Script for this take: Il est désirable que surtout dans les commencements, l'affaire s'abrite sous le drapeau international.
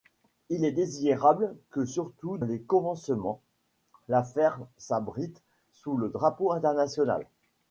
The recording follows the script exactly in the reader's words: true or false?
false